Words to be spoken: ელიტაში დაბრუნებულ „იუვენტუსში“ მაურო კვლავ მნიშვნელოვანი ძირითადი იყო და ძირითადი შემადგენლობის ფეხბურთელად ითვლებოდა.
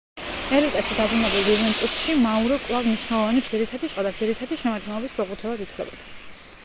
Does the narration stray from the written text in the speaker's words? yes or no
no